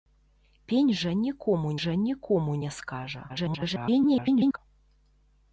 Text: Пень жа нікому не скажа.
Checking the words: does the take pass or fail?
fail